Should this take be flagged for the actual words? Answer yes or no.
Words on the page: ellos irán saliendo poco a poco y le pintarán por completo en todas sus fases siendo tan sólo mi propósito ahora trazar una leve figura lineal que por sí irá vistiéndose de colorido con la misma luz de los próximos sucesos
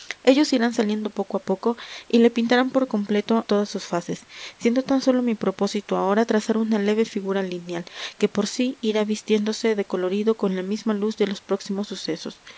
yes